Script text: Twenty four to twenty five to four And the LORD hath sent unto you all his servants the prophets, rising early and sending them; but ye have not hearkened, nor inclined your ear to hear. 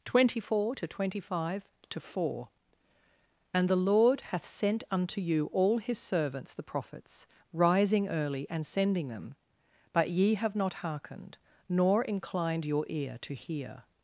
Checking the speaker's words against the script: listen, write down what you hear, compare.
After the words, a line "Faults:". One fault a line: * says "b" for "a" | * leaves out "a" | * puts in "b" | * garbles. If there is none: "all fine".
Twenty four to twenty five to four And the LORD hath sent unto you all his servants the prophets, rising early and sending them; but ye have not hearkened, nor inclined your ear to hear.
Faults:
all fine